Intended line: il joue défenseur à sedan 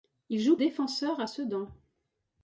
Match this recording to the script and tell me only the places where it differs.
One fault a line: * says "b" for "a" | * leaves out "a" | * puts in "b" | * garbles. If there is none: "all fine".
all fine